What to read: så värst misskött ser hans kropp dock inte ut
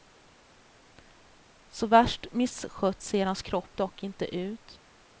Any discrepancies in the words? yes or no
no